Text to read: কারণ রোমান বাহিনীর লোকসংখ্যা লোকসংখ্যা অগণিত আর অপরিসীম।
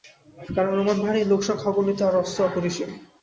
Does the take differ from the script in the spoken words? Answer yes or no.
yes